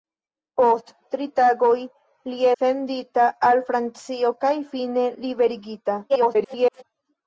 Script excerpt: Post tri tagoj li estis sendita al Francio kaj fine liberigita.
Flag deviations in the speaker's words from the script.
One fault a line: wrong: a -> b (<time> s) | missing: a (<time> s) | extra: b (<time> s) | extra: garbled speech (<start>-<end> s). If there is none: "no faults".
missing: estis (2.5 s)
extra: garbled speech (6.1-6.8 s)